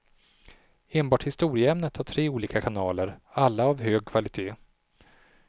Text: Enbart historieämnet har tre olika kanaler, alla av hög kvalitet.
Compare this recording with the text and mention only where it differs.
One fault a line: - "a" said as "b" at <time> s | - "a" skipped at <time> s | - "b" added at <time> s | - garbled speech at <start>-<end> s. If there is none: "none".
none